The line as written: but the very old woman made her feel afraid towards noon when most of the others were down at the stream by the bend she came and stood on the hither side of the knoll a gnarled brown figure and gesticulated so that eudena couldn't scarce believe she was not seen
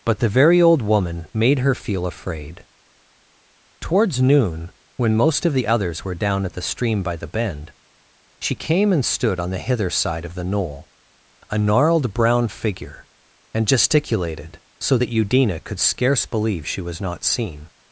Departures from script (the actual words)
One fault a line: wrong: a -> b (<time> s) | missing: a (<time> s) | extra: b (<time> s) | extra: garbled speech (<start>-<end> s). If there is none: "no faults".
wrong: couldn't -> could (15.6 s)